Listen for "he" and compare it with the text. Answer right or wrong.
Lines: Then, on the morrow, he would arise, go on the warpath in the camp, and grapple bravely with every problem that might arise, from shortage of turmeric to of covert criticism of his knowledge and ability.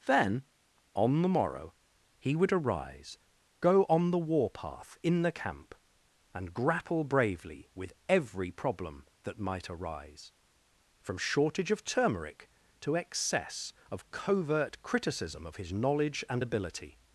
right